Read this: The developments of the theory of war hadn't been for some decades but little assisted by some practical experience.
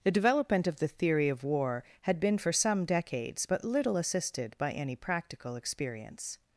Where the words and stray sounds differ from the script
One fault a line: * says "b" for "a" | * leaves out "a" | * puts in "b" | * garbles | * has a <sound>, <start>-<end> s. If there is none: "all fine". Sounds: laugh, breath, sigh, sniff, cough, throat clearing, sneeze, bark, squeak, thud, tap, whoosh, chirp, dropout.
* says "development" for "developments"
* says "had" for "hadn't"
* says "any" for "some"